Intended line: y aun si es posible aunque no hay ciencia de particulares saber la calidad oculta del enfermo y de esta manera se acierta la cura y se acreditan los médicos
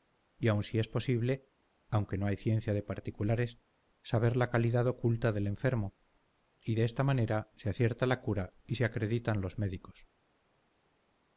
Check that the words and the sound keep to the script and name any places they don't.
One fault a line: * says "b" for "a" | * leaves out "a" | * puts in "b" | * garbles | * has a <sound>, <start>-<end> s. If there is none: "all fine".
all fine